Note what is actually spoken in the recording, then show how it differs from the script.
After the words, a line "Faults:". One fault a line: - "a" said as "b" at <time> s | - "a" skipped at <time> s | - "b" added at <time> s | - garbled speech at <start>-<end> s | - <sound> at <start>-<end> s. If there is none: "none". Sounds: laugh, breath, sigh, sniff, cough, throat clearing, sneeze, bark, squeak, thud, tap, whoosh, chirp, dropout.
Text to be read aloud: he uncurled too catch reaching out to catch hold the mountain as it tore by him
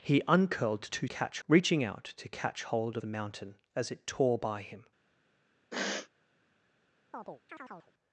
he uncurled too catch reaching out to catch hold the mountain as it tore by him
Faults:
- sniff at 5.7-6.1 s
- chirp at 7.1-7.9 s